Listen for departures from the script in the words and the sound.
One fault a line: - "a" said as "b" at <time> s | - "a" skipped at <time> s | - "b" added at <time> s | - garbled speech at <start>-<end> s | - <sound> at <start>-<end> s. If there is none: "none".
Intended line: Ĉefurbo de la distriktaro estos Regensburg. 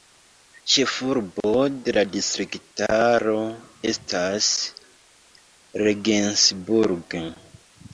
- "estos" said as "estas" at 3.9 s